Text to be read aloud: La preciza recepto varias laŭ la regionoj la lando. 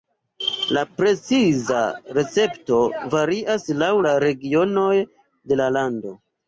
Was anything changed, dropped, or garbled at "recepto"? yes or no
no